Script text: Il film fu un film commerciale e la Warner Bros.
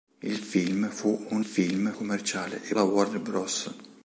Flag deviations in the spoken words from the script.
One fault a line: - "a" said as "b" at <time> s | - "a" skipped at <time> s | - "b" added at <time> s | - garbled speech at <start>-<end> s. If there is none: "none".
none